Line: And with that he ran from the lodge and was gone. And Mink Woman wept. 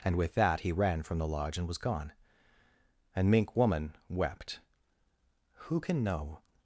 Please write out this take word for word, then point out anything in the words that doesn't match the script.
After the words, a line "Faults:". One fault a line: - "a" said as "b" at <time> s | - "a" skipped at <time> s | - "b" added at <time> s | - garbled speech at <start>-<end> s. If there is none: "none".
And with that he ran from the lodge and was gone. And Mink Woman wept. "Who can know
Faults:
- "Who can know" added at 5.7 s